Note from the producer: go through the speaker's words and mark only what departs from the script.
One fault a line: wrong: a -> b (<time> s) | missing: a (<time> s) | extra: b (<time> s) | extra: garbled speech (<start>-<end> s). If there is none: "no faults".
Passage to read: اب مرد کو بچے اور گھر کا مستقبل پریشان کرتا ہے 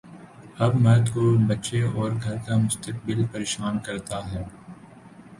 no faults